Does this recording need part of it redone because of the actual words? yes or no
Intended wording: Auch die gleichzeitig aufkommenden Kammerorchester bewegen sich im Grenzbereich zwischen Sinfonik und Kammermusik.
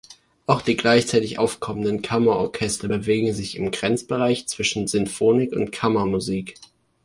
no